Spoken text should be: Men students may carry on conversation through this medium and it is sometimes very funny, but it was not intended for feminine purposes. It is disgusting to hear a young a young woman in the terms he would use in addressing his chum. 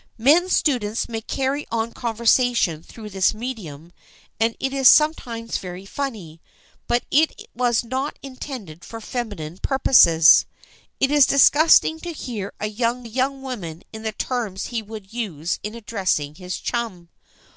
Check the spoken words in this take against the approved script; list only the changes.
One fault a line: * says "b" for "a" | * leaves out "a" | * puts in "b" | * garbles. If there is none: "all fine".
all fine